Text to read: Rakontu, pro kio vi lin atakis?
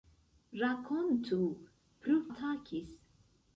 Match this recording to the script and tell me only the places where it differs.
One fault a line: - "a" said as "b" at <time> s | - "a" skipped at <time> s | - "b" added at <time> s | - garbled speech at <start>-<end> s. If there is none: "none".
- "kio vi lin" skipped at 2.2 s